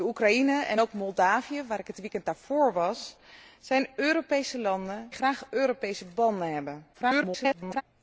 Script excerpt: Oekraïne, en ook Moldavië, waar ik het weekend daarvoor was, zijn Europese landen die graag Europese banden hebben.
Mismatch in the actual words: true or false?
true